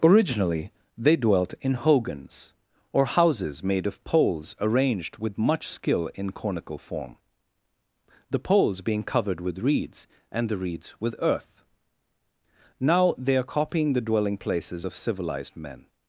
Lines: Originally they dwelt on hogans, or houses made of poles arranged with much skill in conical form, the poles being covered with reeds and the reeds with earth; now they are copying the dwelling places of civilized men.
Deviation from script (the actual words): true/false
true